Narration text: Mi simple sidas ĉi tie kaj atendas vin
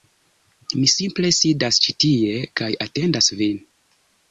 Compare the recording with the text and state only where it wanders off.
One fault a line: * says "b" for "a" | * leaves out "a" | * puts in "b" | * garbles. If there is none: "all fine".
all fine